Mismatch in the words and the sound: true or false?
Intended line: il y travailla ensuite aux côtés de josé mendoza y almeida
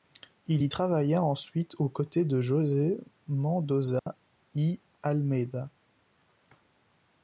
true